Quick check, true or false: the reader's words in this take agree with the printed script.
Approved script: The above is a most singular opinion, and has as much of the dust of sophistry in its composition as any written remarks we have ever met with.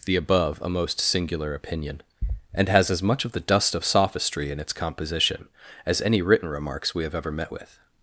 false